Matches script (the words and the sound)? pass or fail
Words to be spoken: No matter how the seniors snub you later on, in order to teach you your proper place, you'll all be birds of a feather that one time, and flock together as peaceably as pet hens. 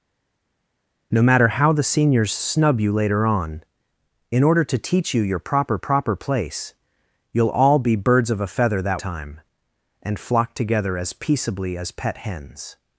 fail